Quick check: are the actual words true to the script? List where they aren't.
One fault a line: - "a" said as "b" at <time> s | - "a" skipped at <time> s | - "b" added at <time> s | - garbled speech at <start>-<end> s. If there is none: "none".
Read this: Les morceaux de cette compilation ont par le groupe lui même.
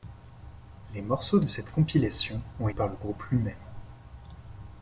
none